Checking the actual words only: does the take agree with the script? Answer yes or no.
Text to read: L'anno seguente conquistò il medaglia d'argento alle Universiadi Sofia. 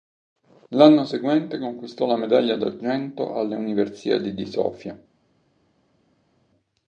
no